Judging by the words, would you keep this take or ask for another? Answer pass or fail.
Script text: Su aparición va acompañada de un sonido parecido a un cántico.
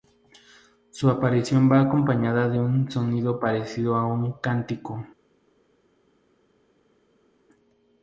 pass